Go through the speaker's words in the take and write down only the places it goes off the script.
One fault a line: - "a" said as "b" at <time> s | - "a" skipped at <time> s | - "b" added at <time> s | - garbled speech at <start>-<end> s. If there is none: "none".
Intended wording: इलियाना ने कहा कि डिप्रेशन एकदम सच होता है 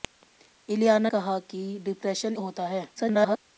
- "ने" skipped at 1.1 s
- "एकदम सच" skipped at 2.4 s
- garbled speech at 3.0-3.4 s